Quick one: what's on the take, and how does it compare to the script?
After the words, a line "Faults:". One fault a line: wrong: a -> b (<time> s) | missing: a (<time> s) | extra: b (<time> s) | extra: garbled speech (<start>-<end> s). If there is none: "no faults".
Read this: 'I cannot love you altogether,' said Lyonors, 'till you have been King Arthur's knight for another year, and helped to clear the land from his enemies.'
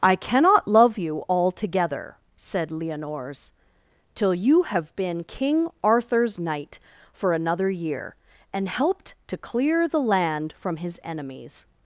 'I cannot love you altogether,' said Lyonors, 'till you have been King Arthur's knight for another year, and helped to clear the land from his enemies.'
Faults:
no faults